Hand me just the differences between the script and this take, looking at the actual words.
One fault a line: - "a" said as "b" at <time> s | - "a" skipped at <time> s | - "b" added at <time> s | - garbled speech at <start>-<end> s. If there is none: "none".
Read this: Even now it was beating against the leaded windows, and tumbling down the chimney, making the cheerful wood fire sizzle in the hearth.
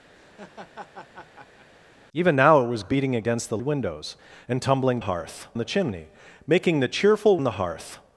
- "leaded" skipped at 3.6 s
- "down" said as "hearth" at 5.0 s
- "wood fire sizzle" skipped at 7.4 s